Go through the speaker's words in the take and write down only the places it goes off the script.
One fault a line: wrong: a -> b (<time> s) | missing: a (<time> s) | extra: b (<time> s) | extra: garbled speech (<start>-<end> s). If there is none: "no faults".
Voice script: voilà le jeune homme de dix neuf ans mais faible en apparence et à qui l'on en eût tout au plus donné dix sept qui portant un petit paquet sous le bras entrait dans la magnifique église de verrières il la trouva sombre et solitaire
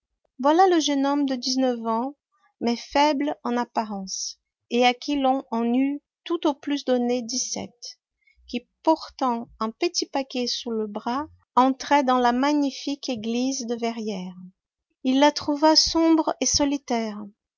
no faults